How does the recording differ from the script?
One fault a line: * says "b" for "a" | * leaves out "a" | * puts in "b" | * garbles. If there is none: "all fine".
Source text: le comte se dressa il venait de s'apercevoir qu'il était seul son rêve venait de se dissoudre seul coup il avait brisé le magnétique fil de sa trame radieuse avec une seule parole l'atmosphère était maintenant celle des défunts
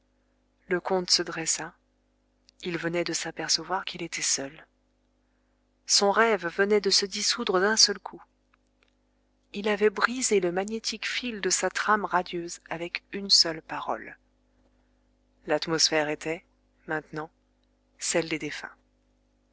* puts in "d'un"